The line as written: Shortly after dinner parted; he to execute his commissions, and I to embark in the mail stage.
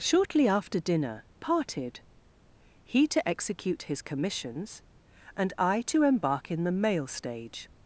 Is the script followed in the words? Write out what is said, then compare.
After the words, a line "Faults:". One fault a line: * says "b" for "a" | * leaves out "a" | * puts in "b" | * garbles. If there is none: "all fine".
Shortly after dinner parted; he to execute his commissions, and I to embark in the mail stage.
Faults:
all fine